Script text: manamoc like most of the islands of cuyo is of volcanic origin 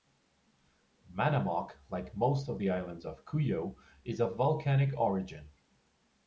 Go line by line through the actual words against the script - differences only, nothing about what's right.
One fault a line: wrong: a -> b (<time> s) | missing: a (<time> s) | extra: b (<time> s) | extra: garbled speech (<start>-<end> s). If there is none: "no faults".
no faults